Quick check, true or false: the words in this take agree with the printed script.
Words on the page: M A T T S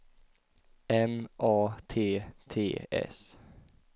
true